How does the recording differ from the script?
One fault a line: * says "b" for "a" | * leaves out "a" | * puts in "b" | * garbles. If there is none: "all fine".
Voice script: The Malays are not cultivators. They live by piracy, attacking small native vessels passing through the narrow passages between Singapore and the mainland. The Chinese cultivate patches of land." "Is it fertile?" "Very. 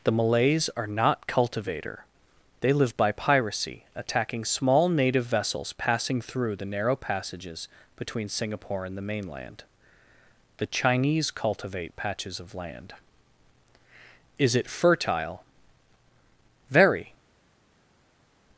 * says "cultivator" for "cultivators"